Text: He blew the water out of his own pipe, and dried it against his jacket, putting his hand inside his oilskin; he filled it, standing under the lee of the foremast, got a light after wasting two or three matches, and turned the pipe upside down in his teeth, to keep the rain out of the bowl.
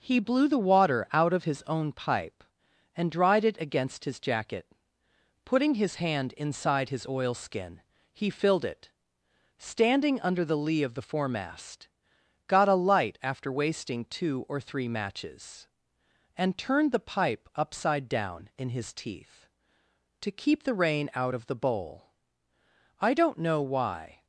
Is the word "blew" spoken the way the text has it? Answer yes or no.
yes